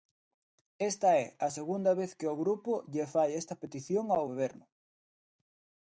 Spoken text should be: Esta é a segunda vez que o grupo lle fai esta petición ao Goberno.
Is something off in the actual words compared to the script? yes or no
no